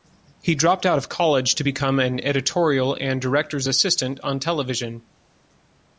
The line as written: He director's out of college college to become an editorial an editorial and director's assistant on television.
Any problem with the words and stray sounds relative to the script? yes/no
yes